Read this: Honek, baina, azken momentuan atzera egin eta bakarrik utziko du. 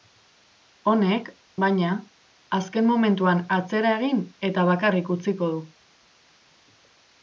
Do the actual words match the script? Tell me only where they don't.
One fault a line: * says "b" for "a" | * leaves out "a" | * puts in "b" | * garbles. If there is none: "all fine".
all fine